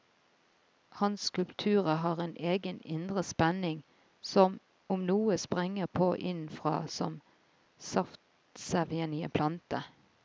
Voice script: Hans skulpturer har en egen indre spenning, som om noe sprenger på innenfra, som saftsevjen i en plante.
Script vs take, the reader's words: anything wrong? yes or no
no